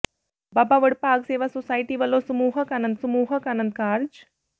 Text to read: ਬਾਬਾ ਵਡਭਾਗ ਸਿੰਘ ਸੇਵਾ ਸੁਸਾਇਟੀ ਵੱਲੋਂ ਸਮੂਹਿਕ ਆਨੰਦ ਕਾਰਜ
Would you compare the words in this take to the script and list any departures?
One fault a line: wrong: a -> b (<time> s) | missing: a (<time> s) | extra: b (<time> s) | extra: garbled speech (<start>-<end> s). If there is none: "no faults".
missing: ਸਿੰਘ (1.2 s)
extra: ਸਮੂਹਿਕ ਆਨੰਦ (2.9 s)